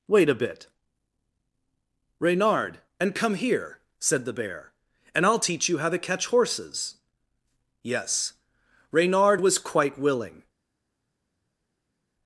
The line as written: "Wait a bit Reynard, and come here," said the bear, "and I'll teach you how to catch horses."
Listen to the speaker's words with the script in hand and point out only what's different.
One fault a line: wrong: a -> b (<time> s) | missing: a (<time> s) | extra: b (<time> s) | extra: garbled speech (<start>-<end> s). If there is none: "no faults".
extra: Yes Reynard was quite willing (7.8 s)